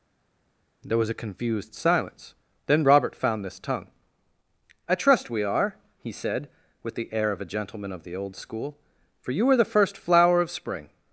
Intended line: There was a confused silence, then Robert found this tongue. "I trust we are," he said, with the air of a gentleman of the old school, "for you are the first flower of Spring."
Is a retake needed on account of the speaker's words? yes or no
no